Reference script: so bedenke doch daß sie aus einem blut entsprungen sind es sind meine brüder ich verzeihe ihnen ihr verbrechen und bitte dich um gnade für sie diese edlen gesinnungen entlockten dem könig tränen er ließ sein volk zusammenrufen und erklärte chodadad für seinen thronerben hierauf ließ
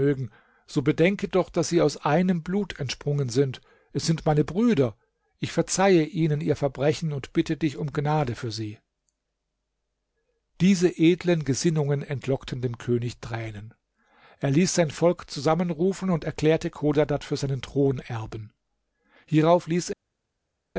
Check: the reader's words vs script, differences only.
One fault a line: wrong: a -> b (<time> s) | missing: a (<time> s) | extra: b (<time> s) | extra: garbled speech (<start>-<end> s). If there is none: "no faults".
no faults